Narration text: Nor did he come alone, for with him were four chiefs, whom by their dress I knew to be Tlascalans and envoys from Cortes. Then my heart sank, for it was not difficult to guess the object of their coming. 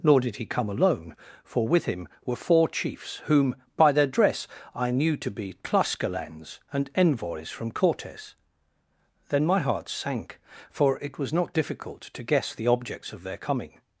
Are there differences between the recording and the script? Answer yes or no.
yes